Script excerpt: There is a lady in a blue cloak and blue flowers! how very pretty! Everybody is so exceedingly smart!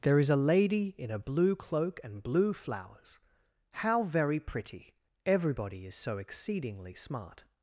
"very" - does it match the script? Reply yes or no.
yes